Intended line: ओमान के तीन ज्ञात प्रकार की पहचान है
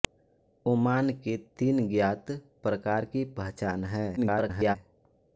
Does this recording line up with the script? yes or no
no